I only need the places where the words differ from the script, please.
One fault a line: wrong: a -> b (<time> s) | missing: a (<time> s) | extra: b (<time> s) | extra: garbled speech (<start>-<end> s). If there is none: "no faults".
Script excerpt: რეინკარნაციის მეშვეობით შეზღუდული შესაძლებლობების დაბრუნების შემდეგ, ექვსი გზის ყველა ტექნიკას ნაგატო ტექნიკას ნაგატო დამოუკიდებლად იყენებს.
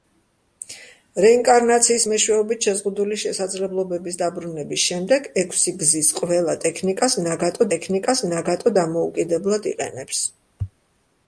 no faults